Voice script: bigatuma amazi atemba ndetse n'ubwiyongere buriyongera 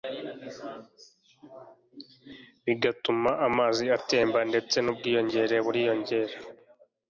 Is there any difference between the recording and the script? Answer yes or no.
no